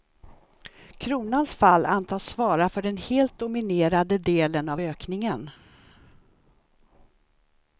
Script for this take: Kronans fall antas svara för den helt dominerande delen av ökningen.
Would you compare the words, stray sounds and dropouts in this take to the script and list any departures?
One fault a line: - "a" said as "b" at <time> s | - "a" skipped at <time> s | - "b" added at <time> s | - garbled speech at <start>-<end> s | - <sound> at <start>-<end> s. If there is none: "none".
none